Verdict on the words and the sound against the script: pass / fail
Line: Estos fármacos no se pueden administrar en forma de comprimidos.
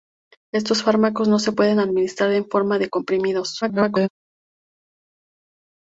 fail